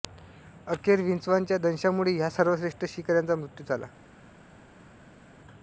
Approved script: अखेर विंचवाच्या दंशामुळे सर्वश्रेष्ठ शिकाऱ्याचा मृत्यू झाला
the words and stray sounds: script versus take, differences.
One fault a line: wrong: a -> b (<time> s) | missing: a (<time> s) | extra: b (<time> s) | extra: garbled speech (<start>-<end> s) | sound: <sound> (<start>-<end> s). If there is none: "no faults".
extra: ह्या (2.1 s)